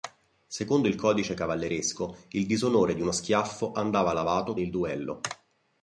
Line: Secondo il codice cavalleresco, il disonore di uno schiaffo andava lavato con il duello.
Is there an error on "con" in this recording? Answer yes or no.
yes